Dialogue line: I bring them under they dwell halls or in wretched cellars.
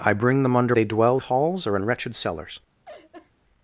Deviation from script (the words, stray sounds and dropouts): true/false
true